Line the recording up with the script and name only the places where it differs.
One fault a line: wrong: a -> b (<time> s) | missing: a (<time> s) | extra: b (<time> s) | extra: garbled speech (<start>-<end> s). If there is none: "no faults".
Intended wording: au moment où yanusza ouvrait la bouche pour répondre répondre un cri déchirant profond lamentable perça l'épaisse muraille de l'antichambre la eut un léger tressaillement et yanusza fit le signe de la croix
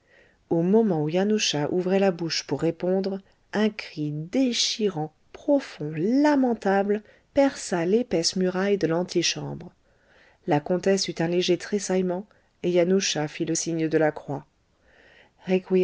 missing: répondre (3.2 s)
extra: comtesse (10.6 s)